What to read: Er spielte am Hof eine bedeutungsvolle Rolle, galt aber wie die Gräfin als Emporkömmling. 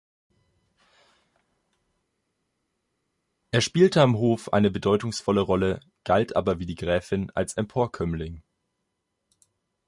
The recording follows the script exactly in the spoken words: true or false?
true